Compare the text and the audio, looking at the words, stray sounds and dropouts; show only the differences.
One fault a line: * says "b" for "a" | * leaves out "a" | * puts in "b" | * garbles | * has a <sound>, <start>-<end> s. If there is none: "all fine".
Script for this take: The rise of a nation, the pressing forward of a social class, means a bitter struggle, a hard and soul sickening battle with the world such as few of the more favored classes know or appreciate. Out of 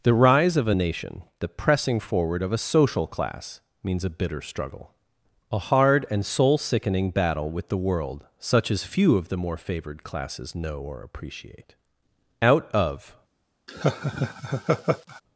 * has a laugh, 13.7-15.2 s